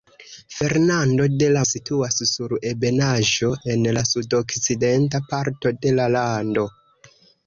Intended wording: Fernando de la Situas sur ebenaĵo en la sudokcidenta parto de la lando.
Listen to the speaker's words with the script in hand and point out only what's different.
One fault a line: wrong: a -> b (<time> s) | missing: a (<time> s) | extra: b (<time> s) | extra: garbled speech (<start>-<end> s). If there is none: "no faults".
no faults